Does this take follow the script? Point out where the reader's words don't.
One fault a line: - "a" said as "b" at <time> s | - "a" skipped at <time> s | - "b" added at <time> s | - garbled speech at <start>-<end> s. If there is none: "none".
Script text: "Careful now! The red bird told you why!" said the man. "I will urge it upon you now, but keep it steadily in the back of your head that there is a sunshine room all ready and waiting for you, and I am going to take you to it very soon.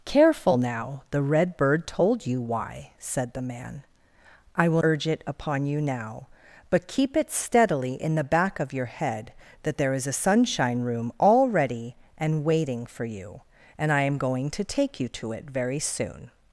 none